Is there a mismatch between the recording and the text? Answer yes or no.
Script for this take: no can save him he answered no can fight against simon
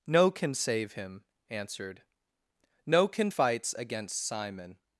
yes